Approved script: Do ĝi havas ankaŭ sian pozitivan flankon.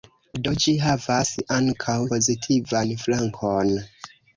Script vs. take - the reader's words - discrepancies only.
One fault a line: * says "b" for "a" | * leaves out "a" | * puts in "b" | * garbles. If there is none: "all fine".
* leaves out "sian"